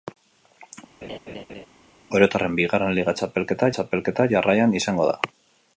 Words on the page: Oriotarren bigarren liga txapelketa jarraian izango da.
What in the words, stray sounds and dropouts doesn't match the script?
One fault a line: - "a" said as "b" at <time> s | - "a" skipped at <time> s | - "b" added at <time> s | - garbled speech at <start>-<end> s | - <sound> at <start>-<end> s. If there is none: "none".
- laugh at 1.0-1.7 s
- "txapelketa" added at 3.8 s